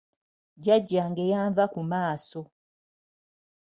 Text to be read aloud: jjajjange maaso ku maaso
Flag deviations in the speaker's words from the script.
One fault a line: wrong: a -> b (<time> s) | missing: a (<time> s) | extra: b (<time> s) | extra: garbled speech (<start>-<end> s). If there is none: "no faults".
wrong: maaso -> yanva (1.3 s)